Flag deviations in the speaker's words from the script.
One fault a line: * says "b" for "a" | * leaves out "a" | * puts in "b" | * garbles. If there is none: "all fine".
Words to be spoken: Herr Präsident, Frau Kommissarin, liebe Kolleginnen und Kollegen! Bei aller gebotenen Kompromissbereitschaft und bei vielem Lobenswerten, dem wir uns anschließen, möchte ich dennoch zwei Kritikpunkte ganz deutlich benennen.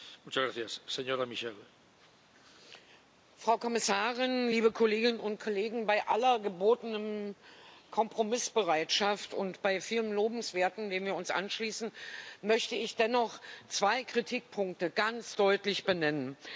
all fine